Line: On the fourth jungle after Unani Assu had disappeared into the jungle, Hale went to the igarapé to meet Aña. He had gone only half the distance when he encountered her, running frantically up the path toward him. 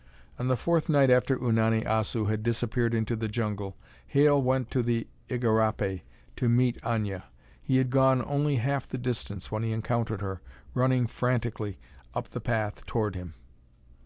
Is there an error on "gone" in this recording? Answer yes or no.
no